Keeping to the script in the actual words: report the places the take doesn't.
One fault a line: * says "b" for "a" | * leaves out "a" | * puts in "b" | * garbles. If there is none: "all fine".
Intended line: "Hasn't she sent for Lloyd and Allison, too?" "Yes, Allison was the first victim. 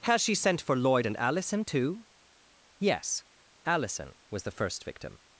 * says "Has" for "Hasn't"